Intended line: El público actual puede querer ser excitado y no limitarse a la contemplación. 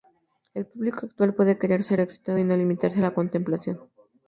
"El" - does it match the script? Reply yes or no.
yes